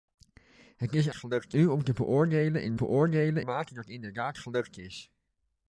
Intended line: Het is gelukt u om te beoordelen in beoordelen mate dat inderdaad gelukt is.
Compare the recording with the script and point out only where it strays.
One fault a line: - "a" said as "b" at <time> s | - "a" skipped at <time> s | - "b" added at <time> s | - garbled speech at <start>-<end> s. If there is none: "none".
none